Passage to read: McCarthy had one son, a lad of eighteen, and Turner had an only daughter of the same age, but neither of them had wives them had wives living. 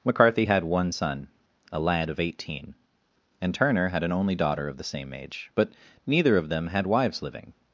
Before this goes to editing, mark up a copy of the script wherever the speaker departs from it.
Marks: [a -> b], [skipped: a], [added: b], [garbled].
McCarthy had one son, a lad of eighteen, and Turner had an only daughter of the same age, but neither of them had wives [skipped: them had wives] living.